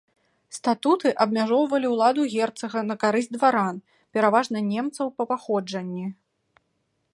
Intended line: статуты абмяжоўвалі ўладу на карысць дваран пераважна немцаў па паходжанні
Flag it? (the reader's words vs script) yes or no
yes